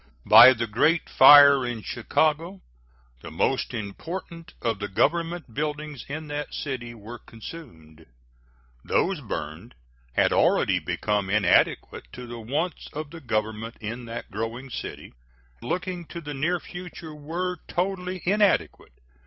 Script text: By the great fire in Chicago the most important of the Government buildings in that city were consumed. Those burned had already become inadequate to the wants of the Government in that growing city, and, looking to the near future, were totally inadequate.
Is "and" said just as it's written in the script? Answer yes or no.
no